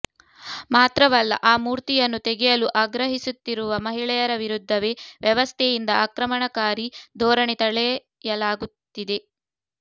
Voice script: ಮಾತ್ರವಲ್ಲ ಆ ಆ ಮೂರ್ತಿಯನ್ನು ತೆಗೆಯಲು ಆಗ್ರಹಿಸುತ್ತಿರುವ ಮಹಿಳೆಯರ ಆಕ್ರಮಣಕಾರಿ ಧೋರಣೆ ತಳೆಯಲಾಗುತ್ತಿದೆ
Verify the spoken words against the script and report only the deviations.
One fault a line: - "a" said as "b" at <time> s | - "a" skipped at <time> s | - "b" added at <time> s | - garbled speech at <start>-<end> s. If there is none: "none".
- "ಆ" skipped at 1.6 s
- "ವಿರುದ್ಧವೇ ವ್ಯವಸ್ಥೆಯಿಂದ" added at 4.4 s